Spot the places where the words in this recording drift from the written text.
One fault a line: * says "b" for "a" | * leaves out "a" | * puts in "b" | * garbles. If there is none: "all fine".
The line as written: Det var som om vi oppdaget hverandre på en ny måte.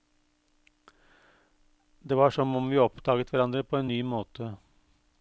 all fine